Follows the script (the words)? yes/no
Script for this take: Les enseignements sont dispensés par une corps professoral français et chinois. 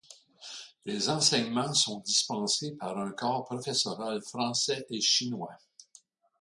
no